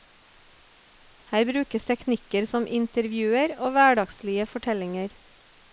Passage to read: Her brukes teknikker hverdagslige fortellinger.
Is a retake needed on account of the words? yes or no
yes